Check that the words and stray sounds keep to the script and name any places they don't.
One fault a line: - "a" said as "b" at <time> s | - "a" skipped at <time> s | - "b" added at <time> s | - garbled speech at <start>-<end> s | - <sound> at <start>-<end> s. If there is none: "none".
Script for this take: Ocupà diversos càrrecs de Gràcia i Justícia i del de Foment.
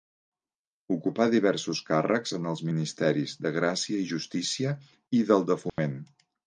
- "en els ministeris" added at 2.4 s
- dropout at 5.7-5.8 s